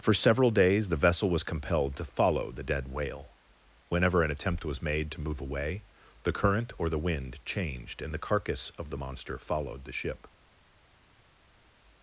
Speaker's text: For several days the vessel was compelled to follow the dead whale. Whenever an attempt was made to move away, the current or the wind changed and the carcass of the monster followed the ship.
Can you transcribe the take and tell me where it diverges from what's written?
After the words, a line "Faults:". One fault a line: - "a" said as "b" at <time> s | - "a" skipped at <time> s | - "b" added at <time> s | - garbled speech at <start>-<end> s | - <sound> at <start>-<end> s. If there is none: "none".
For several days the vessel was compelled to follow the dead whale. Whenever an attempt was made to move away, the current or the wind changed and the carcass of the monster followed the ship.
Faults:
none